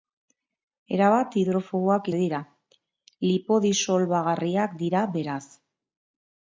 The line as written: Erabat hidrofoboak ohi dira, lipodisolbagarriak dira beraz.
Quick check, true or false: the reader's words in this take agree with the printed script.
true